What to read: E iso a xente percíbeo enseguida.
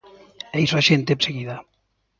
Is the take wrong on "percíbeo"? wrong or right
wrong